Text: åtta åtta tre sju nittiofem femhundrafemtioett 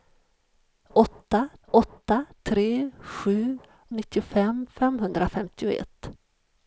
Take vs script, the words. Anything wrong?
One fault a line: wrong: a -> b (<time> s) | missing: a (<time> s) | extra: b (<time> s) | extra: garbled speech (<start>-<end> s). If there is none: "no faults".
no faults